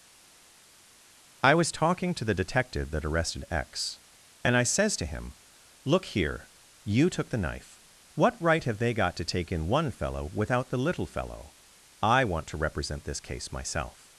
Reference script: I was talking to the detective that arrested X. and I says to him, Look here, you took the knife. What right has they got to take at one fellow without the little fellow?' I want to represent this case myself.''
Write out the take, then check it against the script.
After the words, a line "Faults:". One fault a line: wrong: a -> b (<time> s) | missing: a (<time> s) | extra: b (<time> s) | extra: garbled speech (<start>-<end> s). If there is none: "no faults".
I was talking to the detective that arrested X. and I says to him, Look here, you took the knife. What right have they got to take in one fellow without the little fellow?' I want to represent this case myself.''
Faults:
wrong: has -> have (8.6 s)
wrong: at -> in (9.5 s)